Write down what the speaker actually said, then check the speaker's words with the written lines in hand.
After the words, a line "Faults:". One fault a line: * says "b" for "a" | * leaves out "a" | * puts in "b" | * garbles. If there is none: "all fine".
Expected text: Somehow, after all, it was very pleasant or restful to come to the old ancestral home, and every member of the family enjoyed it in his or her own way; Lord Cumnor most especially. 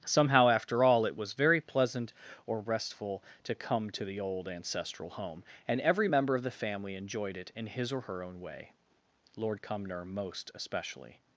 Somehow, after all, it was very pleasant or restful to come to the old ancestral home, and every member of the family enjoyed it in his or her own way; Lord Cumnor most especially.
Faults:
all fine